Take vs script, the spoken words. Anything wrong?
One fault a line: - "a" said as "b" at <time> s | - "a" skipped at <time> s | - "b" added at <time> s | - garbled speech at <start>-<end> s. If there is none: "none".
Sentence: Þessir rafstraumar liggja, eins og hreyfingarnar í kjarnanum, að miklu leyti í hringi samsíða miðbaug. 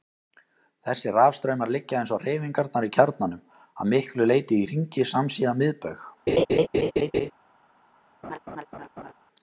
none